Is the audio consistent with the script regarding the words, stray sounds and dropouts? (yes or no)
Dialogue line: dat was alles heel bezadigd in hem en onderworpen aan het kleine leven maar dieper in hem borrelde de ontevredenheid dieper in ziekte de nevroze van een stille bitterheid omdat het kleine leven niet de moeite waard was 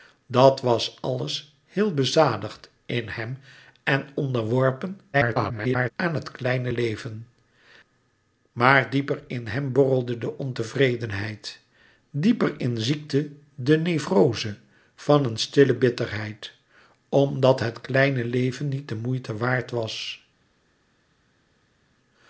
no